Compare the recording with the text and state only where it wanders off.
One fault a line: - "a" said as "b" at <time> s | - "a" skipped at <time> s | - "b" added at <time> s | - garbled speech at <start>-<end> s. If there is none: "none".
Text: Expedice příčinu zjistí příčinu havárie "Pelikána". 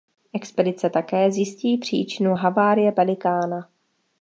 - "příčinu" said as "také" at 0.9 s